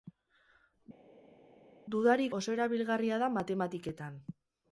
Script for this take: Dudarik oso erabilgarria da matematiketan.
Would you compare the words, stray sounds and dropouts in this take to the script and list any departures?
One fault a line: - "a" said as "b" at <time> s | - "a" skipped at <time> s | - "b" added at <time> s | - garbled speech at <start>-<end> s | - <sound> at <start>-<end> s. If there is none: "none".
none